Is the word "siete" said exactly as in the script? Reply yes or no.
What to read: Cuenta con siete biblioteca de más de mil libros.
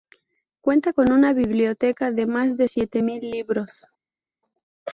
no